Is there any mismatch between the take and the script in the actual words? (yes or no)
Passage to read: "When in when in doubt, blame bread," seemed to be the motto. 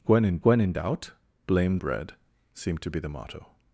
no